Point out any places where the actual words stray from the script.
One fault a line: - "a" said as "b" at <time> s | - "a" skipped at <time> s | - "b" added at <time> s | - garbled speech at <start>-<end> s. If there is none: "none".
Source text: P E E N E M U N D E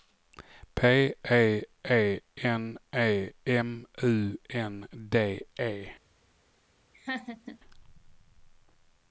none